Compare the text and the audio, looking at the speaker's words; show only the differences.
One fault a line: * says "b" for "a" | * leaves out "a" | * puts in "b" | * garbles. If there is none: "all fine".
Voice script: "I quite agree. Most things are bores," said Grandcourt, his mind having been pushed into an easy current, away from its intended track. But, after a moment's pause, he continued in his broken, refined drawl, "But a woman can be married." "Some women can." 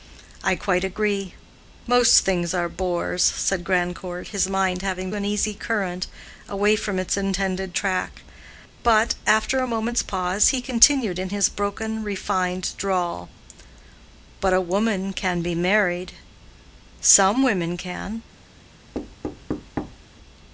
* leaves out "been pushed into"